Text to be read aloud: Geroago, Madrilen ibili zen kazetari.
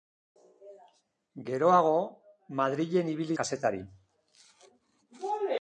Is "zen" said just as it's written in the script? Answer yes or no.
no